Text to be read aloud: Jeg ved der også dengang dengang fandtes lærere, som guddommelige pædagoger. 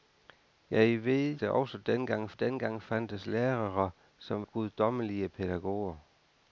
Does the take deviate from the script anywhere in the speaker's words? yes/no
no